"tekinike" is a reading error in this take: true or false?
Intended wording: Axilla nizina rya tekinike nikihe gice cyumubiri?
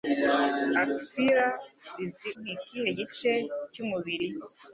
true